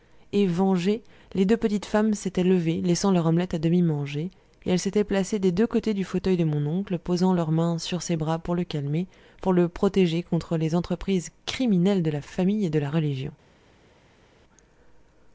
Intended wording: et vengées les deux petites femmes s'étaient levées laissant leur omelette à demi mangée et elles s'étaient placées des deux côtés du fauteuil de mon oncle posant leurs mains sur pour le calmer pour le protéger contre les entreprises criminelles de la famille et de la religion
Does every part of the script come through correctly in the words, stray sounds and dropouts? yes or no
no